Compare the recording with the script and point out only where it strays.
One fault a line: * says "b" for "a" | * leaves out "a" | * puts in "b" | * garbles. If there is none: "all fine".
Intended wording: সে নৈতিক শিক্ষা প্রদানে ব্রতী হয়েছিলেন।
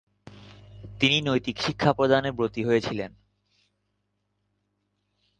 * says "তিনি" for "সে"